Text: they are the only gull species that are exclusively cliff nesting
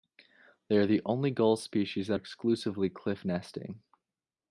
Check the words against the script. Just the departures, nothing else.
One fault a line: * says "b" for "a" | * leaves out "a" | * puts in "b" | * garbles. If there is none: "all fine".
* leaves out "are"